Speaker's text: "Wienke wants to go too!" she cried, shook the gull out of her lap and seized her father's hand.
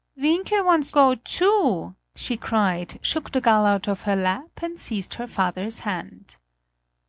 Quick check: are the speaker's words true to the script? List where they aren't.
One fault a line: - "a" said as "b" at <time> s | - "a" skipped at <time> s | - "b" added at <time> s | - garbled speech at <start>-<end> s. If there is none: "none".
- "to" skipped at 0.9 s